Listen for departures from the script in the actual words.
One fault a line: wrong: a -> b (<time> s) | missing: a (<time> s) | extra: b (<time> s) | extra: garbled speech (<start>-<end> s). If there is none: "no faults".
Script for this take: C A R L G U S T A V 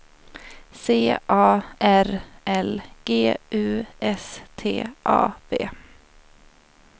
no faults